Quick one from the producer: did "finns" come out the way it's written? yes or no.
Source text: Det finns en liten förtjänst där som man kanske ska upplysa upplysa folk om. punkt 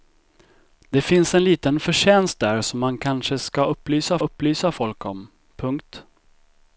yes